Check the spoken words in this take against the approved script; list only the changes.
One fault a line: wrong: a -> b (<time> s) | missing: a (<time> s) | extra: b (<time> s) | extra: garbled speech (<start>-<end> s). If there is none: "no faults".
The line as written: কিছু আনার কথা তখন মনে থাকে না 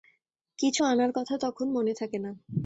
no faults